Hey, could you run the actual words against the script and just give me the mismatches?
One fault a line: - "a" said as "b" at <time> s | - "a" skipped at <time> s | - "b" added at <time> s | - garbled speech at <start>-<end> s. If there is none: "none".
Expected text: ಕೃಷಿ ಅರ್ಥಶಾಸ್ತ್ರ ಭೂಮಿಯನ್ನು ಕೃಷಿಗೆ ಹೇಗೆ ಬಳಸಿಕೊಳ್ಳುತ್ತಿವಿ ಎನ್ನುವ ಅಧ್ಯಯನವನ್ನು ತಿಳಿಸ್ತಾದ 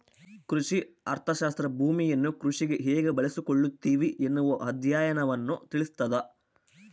none